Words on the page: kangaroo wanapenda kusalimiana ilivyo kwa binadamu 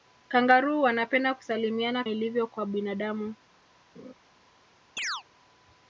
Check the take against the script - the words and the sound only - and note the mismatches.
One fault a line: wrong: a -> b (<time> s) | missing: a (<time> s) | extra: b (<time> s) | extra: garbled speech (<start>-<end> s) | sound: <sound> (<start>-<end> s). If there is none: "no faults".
sound: laugh (3.9-4.1 s)
sound: chirp (5.0-5.2 s)